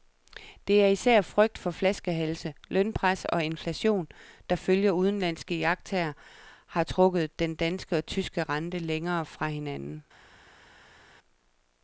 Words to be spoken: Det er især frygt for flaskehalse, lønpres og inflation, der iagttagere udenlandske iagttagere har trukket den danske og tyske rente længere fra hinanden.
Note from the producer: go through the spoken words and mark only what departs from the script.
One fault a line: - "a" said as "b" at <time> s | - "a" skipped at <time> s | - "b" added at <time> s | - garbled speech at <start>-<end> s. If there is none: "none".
- "iagttagere" said as "ifølge" at 4.5 s